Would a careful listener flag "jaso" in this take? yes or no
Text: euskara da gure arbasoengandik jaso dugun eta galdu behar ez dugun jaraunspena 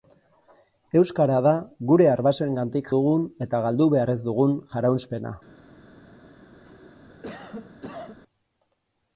yes